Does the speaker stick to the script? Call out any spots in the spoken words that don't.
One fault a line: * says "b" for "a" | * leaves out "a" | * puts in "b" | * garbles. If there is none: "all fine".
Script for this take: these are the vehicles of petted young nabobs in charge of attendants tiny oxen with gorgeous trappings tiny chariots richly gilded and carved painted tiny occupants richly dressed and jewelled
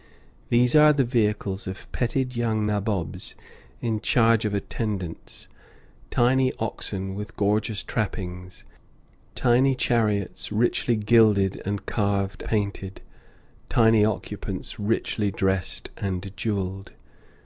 all fine